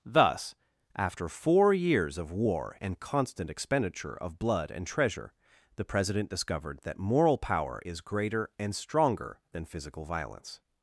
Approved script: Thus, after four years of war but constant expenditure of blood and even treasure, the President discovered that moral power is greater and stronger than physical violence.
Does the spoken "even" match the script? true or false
false